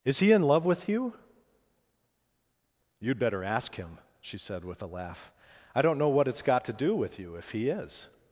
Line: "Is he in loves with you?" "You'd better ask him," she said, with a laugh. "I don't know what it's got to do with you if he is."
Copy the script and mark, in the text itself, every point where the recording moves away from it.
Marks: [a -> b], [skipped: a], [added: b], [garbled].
"Is he in [loves -> love] with you?" "You'd better ask him," she said, with a laugh. "I don't know what it's got to do with you if he is."